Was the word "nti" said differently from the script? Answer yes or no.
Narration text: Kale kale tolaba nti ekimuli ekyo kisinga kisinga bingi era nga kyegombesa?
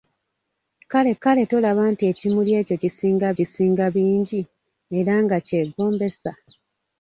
no